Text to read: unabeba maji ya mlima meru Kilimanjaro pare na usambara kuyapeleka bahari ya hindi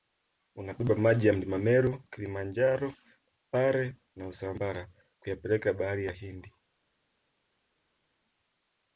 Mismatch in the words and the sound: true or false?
false